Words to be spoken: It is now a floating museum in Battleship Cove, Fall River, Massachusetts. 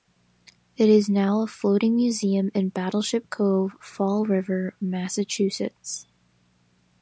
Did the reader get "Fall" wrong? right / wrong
right